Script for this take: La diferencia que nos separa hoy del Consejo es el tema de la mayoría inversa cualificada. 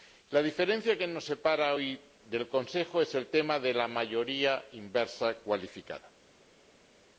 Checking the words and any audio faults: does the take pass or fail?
pass